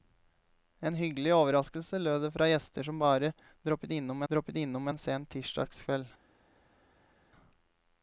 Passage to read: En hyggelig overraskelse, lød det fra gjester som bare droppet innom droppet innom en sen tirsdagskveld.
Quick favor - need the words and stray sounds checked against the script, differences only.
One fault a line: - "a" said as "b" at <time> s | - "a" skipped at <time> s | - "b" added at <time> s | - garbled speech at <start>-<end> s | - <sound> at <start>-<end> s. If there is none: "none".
none